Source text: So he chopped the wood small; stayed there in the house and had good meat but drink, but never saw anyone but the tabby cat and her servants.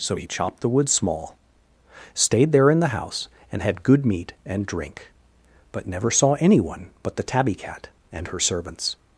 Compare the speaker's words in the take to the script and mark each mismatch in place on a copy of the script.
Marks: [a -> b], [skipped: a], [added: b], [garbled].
So he chopped the wood small; stayed there in the house and had good meat [but -> and] drink, but never saw anyone but the tabby cat and her servants.